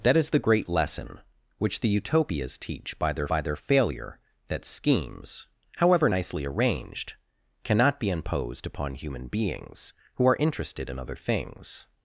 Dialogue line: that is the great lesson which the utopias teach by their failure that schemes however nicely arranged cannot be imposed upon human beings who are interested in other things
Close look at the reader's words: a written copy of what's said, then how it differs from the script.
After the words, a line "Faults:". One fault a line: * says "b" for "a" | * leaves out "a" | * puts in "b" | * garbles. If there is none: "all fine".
that is the great lesson which the utopias teach by their by their failure that schemes however nicely arranged cannot be imposed upon human beings who are interested in other things
Faults:
* puts in "by their"